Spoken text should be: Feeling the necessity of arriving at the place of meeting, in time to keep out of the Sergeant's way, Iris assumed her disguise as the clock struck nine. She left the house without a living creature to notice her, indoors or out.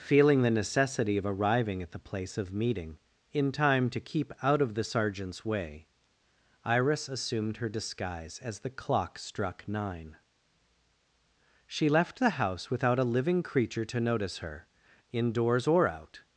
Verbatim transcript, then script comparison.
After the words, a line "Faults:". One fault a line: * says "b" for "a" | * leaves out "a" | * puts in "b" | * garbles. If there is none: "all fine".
Feeling the necessity of arriving at the place of meeting, in time to keep out of the Sergeant's way, Iris assumed her disguise as the clock struck nine. She left the house without a living creature to notice her, indoors or out.
Faults:
all fine